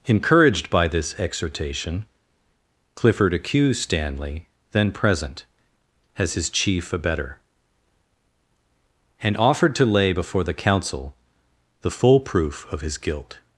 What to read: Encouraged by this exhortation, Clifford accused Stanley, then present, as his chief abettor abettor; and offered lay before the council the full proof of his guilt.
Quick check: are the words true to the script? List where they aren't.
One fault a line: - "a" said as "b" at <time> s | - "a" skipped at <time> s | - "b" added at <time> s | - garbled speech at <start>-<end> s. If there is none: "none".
- "abettor" skipped at 7.4 s
- "to" added at 9.7 s